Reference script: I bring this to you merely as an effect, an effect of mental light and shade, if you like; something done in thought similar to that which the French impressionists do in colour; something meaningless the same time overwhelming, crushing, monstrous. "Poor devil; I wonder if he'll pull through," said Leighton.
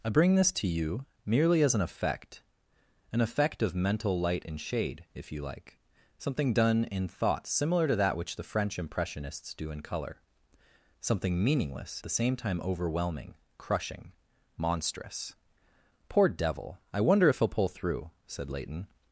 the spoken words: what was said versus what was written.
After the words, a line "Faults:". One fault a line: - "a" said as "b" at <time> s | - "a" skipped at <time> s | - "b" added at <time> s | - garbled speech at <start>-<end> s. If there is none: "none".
I bring this to you merely as an effect, an effect of mental light and shade, if you like; something done in thought similar to that which the French impressionists do in colour; something meaningless the same time overwhelming, crushing, monstrous. "Poor devil; I wonder if he'll pull through," said Leighton.
Faults:
none